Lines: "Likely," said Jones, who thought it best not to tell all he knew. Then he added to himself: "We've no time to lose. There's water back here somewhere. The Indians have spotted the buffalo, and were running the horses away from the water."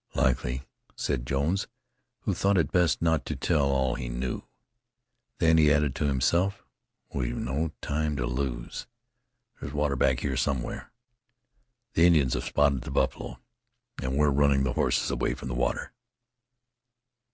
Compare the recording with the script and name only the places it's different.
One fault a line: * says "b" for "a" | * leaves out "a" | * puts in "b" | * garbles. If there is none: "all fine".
all fine